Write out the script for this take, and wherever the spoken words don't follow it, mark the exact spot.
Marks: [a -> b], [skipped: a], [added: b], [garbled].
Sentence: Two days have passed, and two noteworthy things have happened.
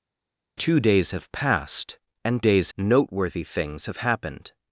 Two days have passed, and [two -> days] noteworthy things have happened.